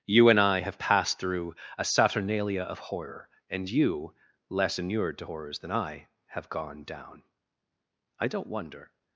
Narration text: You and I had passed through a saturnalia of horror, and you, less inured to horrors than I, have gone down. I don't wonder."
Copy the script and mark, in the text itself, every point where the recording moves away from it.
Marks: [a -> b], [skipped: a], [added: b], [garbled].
You and I [had -> have] passed through a saturnalia of horror, and you, less inured to horrors than I, have gone down. I don't wonder."